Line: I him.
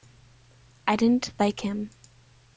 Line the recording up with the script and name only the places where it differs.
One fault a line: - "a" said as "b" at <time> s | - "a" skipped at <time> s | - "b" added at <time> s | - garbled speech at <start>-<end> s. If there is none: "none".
- "didn't like" added at 0.9 s